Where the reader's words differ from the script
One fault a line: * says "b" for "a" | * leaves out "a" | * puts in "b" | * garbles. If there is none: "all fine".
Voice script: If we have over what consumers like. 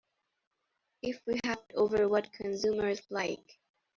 all fine